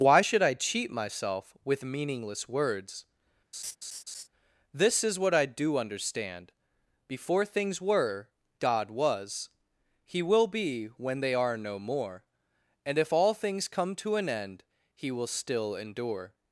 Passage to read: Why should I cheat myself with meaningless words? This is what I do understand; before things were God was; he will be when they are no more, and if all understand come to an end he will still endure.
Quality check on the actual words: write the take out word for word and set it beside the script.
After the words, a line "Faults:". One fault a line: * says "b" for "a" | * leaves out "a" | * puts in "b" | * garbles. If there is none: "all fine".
Why should I cheat myself with meaningless words? This is what I do understand; before things were God was; he will be when they are no more, and if all things come to an end he will still endure.
Faults:
* says "things" for "understand"